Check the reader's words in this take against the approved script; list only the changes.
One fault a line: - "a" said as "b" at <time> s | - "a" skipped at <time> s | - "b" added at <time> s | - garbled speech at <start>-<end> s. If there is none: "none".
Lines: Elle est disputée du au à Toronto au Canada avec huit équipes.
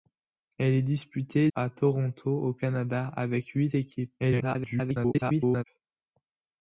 - "du au" skipped at 1.5 s
- garbled speech at 4.2-5.6 s